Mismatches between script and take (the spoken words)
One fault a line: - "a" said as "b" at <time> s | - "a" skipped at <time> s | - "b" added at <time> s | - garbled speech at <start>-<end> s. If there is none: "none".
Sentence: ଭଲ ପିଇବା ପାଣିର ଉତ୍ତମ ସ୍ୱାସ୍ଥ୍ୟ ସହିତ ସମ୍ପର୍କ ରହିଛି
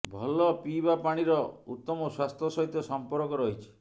none